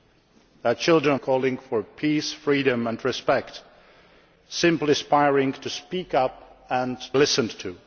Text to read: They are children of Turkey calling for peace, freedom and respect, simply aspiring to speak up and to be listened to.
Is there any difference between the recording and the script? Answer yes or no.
yes